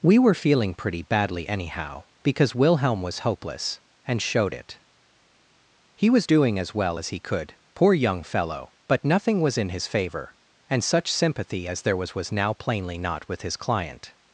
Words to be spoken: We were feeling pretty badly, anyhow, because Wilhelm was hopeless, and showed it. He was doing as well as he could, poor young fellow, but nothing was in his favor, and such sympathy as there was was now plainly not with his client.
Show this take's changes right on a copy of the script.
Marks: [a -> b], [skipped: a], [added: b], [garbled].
We were feeling pretty badly, anyhow, because Wilhelm was hopeless, and showed it. He was doing as well as he could, poor young fellow, but nothing was in his favor, and such sympathy as there was was now plainly not with his client.